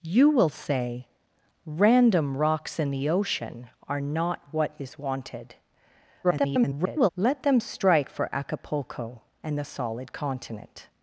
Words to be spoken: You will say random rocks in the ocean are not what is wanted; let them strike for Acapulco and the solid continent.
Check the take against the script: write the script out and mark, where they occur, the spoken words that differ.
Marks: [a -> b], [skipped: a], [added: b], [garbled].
You will say random rocks in the ocean are not what is wanted; [garbled] let them strike for Acapulco and the solid continent.